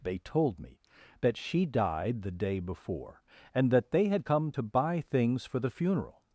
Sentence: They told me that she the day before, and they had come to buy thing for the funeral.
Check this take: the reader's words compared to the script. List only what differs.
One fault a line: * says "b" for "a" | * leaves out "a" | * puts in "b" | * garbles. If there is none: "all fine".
* puts in "died"
* puts in "that"
* says "things" for "thing"